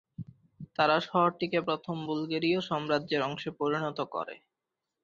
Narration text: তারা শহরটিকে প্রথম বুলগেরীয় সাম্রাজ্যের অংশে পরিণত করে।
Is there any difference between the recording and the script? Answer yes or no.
no